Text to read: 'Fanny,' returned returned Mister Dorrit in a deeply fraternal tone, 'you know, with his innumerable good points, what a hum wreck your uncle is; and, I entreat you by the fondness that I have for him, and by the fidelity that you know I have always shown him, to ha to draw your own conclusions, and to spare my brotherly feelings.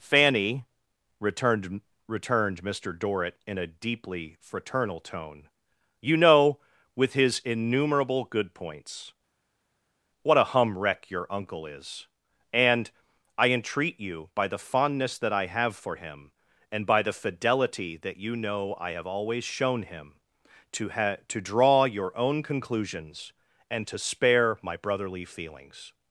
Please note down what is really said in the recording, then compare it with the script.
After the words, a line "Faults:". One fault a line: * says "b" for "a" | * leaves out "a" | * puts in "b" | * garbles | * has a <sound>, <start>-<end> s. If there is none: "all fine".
'Fanny,' returned returned Mister Dorrit in a deeply fraternal tone, 'you know, with his innumerable good points, what a hum wreck your uncle is; and, I entreat you by the fondness that I have for him, and by the fidelity that you know I have always shown him, to ha to draw your own conclusions, and to spare my brotherly feelings.
Faults:
all fine